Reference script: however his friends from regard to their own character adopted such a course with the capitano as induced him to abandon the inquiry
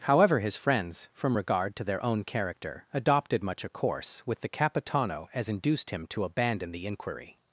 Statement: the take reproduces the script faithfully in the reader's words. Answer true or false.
false